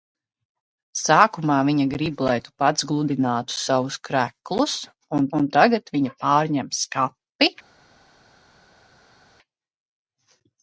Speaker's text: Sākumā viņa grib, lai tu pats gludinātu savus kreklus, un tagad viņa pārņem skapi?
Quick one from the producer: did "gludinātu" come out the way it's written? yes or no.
yes